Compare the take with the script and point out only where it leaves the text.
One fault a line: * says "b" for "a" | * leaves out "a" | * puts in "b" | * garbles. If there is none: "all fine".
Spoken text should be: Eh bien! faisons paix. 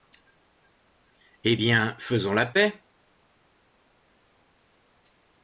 * puts in "la"